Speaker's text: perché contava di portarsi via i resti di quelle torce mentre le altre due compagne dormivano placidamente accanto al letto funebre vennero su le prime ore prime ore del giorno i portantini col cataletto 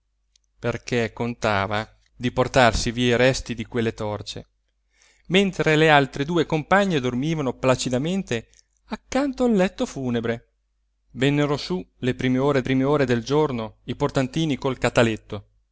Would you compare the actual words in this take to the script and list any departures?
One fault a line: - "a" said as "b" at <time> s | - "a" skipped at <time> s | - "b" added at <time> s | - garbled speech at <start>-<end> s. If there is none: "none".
none